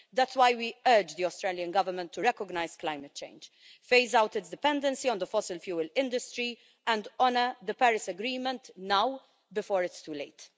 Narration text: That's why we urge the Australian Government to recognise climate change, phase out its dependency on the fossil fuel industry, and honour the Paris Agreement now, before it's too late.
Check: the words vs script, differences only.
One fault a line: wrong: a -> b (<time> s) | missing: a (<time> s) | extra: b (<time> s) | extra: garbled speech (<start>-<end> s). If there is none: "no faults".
no faults